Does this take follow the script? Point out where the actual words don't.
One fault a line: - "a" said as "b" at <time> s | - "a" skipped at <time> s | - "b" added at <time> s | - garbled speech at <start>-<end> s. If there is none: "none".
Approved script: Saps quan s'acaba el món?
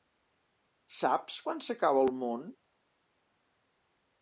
none